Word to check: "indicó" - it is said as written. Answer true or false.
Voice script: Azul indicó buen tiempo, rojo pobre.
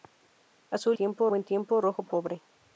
false